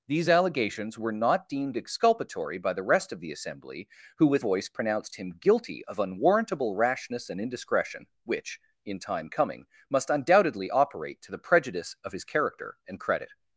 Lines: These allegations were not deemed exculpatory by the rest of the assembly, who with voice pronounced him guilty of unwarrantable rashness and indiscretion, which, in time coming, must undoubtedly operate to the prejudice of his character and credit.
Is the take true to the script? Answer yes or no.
yes